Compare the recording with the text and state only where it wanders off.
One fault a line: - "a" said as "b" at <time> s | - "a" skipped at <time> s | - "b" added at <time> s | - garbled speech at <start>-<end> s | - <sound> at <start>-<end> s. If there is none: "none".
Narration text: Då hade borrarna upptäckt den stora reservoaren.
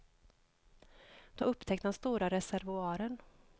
- "hade borrarna" skipped at 1.4 s